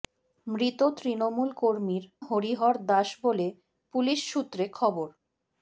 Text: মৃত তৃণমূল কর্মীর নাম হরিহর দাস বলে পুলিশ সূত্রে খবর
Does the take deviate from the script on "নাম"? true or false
true